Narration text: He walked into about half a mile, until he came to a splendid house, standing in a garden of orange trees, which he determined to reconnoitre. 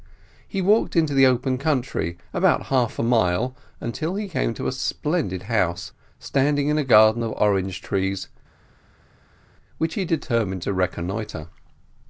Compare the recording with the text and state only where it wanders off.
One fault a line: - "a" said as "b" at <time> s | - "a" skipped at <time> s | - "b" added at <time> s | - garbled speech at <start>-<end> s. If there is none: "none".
- "the open country" added at 1.1 s